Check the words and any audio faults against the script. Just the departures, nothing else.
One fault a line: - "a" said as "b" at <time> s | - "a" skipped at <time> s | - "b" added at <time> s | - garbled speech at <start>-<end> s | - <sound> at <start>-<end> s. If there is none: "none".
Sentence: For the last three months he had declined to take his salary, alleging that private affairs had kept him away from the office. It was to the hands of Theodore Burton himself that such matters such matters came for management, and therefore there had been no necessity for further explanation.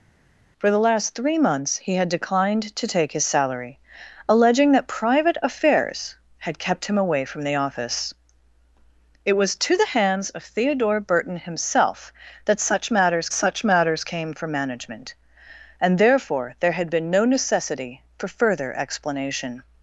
none